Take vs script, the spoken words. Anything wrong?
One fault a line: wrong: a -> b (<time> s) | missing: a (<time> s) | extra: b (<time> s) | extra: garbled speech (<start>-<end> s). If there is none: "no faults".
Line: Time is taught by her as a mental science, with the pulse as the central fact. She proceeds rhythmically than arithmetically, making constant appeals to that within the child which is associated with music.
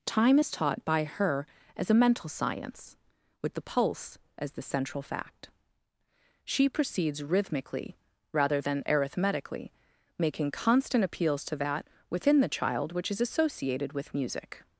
extra: rather (8.3 s)